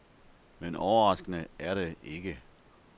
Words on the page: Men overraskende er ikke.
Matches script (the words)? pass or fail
fail